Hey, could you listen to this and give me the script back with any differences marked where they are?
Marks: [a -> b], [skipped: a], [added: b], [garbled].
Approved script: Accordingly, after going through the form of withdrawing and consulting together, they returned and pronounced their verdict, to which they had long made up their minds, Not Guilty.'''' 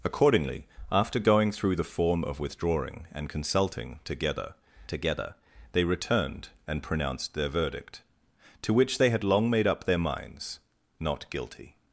Accordingly, after going through the form of withdrawing and consulting together, [added: together] they returned and pronounced their verdict, to which they had long made up their minds, Not Guilty.''''